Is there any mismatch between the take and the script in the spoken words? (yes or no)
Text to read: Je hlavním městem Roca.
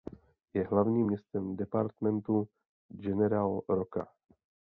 yes